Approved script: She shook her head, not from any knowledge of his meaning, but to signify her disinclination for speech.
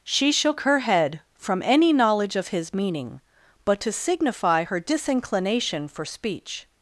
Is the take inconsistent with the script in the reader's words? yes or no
yes